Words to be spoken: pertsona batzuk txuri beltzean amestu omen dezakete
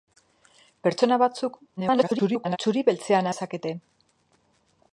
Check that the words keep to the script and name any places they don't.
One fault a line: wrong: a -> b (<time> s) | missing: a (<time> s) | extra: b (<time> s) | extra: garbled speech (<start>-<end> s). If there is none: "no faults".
extra: garbled speech (1.8-2.6 s)
missing: amestu omen (3.3 s)